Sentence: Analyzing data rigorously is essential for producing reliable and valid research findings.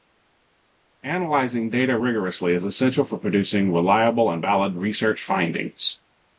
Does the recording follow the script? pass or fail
pass